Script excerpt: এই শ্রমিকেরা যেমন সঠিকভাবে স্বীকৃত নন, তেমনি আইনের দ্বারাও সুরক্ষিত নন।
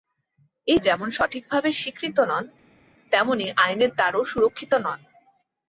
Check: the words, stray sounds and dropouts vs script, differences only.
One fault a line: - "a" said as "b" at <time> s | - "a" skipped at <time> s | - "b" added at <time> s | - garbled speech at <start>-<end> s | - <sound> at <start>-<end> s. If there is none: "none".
- "শ্রমিকেরা" skipped at 0.8 s